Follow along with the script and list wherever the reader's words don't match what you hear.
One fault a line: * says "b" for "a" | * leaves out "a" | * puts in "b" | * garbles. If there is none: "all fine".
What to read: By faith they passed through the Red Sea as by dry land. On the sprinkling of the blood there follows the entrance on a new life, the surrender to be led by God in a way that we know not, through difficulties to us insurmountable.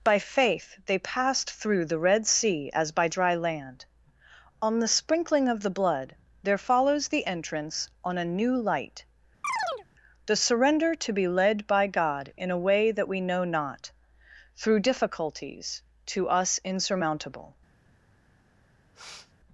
* says "light" for "life"